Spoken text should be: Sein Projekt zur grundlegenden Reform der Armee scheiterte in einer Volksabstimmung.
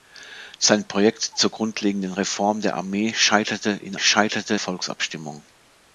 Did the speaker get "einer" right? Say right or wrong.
wrong